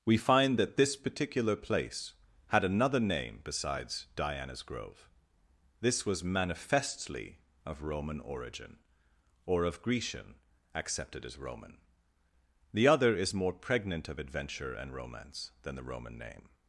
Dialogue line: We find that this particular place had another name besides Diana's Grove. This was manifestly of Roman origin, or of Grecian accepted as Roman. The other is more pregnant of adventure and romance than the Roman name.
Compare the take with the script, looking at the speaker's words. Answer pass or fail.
pass